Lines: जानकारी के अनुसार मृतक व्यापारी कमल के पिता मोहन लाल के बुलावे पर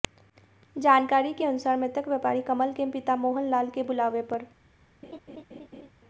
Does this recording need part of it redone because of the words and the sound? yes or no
yes